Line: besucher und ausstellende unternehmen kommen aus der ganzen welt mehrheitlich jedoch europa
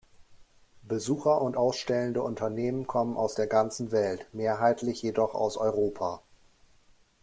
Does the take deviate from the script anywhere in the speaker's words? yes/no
yes